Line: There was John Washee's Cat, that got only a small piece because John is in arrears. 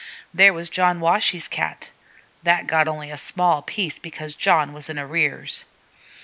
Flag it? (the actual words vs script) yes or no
yes